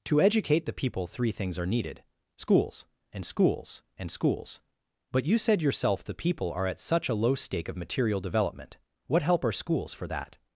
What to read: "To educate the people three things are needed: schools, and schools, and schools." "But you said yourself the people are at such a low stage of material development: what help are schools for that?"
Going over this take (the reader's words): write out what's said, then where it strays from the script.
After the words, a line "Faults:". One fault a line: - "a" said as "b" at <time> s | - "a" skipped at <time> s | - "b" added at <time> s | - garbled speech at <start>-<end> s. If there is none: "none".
"To educate the people three things are needed: schools, and schools, and schools." "But you said yourself the people are at such a low stake of material development: what help are schools for that?"
Faults:
- "stage" said as "stake" at 7.3 s